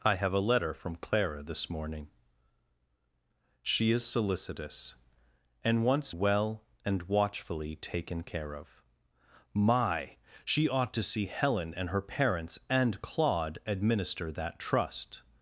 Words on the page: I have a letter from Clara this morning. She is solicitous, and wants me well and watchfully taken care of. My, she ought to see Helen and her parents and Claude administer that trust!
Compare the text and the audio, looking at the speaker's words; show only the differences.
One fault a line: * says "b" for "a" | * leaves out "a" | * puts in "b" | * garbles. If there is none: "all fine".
* leaves out "me"